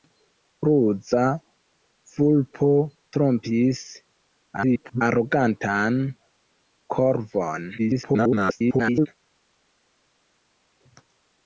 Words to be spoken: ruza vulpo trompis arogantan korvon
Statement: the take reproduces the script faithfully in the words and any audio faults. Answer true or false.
false